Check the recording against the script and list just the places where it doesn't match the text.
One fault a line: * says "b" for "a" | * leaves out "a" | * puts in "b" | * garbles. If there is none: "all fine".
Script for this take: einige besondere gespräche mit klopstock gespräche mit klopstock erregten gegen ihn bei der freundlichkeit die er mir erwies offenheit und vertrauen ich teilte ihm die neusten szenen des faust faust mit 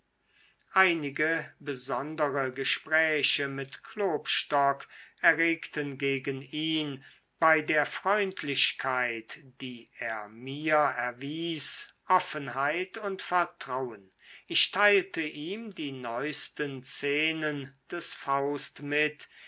* leaves out "gespräche mit klopstock"
* leaves out "faust"